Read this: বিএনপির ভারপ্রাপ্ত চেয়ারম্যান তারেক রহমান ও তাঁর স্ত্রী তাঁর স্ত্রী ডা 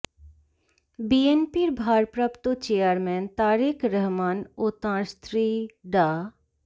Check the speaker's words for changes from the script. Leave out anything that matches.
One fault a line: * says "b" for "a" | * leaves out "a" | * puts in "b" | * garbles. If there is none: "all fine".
* leaves out "তাঁর স্ত্রী"